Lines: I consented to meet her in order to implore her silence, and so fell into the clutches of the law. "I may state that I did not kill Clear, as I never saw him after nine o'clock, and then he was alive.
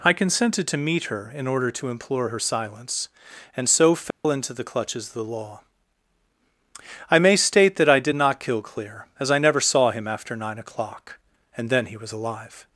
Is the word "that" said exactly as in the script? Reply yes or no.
yes